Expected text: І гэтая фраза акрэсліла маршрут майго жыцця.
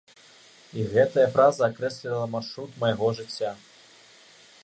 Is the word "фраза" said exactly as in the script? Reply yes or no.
yes